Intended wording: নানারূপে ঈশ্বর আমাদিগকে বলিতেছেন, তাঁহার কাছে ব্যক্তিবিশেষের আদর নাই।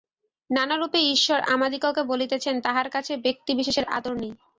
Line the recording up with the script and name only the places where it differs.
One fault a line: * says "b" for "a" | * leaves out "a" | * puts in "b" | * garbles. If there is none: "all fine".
all fine